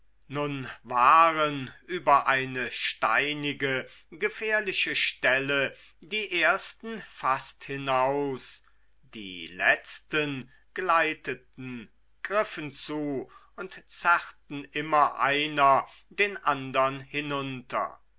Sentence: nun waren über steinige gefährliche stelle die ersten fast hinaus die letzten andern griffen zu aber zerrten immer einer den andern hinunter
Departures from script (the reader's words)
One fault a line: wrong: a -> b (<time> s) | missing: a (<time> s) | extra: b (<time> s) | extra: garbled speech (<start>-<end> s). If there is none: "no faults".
extra: eine (2.2 s)
wrong: andern -> gleiteten (10.7 s)
wrong: aber -> und (13.6 s)